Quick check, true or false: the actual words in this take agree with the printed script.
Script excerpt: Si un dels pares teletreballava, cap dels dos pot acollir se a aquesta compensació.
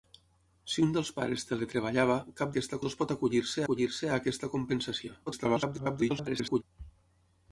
false